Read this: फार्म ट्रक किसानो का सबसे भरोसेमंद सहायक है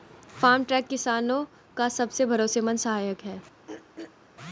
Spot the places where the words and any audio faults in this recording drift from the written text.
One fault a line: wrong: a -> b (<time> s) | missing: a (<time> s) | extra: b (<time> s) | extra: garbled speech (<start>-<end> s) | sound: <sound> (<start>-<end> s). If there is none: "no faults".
sound: throat clearing (3.7-4.2 s)